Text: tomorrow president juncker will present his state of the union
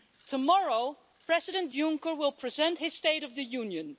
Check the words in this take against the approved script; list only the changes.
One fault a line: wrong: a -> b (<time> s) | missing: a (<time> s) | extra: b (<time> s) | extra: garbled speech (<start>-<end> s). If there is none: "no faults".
no faults